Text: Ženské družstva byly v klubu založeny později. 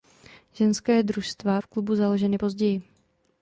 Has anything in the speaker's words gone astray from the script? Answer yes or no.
yes